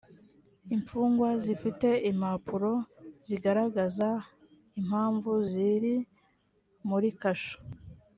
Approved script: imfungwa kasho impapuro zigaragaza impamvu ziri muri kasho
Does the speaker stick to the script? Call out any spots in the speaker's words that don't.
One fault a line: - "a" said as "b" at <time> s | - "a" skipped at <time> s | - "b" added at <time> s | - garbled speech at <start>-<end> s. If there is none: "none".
- "kasho" said as "zifite" at 1.4 s